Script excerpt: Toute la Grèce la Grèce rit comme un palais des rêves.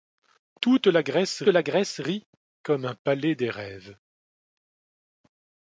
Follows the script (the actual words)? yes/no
yes